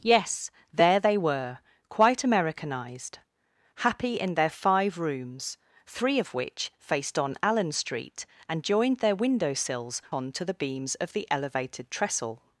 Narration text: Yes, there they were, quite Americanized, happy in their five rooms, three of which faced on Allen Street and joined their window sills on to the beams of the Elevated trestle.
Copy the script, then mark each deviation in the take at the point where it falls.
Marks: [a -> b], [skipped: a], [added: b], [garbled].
Yes, there they were, quite Americanized, happy in their five rooms, three of which faced on Allen Street and joined their window sills on to the beams of the Elevated trestle.